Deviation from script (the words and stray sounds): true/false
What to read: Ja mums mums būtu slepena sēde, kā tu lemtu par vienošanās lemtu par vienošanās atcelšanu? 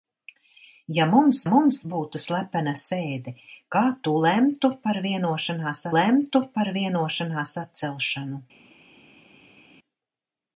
false